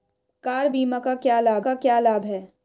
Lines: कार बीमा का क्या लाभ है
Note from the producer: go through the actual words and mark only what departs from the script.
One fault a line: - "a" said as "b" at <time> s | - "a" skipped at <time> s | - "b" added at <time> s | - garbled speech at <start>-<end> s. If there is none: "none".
- "का क्या लाभ" added at 1.6 s